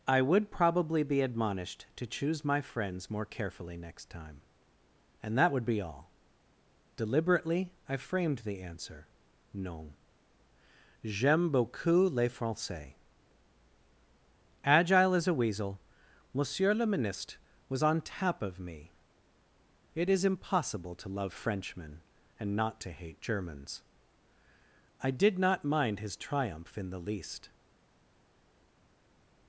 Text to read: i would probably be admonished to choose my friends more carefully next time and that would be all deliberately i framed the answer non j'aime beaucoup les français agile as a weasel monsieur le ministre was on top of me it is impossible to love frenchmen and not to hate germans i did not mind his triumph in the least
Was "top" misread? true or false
true